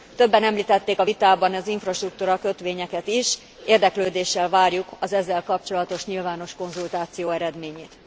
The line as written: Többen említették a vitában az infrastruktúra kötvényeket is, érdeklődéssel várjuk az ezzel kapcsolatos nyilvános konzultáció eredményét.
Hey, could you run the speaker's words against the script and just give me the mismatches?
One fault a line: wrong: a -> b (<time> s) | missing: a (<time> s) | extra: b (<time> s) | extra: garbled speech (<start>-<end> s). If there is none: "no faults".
no faults